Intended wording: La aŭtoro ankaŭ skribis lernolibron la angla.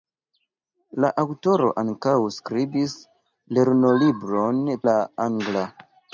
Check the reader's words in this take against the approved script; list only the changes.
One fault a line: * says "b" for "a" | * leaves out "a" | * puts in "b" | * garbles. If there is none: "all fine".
all fine